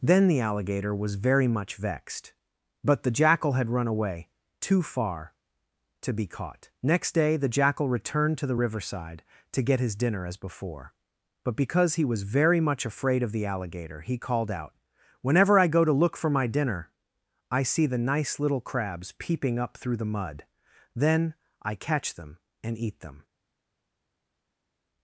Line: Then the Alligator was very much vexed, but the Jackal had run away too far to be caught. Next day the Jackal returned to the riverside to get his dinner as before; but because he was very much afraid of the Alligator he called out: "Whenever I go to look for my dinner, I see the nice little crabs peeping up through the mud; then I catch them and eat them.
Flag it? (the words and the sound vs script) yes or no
no